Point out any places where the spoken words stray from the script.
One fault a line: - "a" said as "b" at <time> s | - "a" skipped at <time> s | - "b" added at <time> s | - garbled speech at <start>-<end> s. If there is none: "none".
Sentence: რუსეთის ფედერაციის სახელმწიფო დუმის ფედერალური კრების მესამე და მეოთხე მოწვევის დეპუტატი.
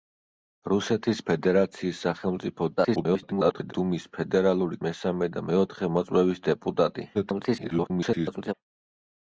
- garbled speech at 2.8-3.7 s
- "კრების" skipped at 4.8 s
- garbled speech at 7.1-8.5 s